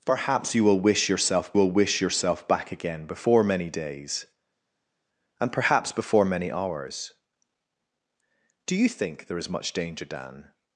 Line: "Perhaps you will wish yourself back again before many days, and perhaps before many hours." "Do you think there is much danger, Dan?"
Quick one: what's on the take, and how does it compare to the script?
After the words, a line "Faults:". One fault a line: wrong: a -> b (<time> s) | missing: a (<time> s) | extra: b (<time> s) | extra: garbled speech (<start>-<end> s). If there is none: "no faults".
"Perhaps you will wish yourself will wish yourself back again before many days, and perhaps before many hours." "Do you think there is much danger, Dan?"
Faults:
extra: will wish yourself (1.5 s)